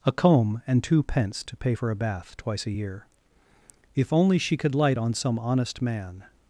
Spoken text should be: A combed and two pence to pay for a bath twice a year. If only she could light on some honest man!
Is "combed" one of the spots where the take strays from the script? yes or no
yes